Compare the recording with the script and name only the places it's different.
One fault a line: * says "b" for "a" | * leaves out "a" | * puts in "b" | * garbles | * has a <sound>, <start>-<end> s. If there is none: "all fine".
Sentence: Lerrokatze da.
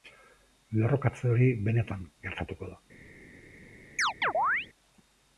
* puts in "hori benetan gertatuko"
* has a chirp, 4.0-4.7 s